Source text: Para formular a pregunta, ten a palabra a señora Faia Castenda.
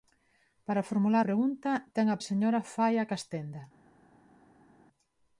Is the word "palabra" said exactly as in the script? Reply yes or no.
no